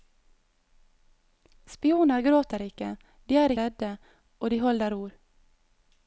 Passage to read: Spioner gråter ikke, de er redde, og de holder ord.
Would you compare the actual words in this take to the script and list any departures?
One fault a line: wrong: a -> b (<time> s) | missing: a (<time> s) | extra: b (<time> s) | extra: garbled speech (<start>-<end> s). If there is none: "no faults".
no faults